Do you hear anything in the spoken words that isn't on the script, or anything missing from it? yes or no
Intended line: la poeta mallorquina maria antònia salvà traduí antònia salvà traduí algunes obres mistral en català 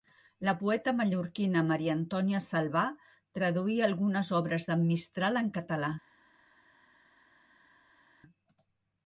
yes